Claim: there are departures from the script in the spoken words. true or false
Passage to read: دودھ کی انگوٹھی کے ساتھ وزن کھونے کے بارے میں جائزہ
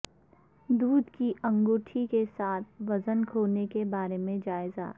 false